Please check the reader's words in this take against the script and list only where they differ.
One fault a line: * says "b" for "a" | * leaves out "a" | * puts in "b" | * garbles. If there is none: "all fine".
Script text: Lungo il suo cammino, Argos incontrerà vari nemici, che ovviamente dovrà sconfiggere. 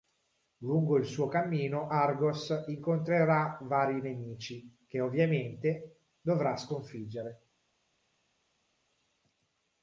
all fine